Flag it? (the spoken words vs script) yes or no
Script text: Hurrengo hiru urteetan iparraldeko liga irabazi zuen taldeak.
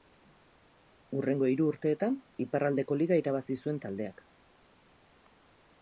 no